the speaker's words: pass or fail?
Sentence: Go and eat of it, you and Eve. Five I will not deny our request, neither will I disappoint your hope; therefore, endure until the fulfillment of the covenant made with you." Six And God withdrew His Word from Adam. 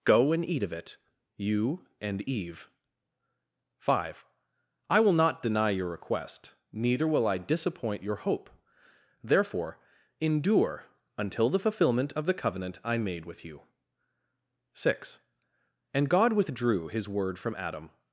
fail